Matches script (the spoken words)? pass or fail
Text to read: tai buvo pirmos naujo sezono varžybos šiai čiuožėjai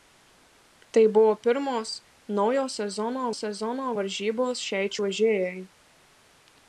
fail